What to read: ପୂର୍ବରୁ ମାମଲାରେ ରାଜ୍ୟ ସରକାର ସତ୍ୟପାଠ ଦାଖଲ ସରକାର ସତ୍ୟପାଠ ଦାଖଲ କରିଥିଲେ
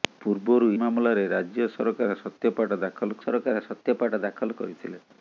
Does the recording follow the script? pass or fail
pass